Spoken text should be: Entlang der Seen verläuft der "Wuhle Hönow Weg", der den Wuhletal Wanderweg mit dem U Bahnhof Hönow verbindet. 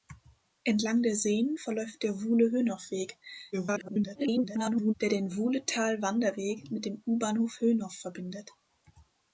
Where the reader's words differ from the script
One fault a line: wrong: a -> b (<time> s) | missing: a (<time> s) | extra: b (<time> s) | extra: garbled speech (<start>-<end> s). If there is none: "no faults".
extra: garbled speech (3.5-4.9 s)